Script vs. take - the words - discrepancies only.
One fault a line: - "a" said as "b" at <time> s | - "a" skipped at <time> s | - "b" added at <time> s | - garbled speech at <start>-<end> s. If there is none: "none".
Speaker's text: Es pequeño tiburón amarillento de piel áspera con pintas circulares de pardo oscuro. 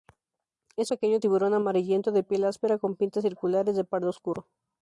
none